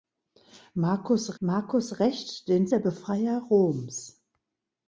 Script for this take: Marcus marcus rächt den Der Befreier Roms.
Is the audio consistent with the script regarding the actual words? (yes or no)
yes